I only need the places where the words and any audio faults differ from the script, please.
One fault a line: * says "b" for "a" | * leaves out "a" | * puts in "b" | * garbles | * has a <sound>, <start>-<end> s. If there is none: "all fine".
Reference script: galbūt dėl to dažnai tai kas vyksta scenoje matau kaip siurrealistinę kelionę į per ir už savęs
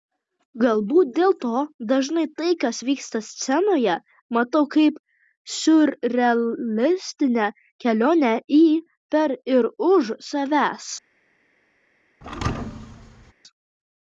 * has a thud, 12.2-13.3 s